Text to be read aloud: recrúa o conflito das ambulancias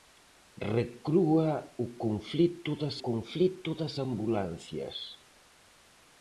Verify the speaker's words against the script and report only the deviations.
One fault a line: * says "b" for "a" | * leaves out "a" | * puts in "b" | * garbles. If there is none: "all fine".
* puts in "conflito das"